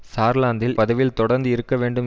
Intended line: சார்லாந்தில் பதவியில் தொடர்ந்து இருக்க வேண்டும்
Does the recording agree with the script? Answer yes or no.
yes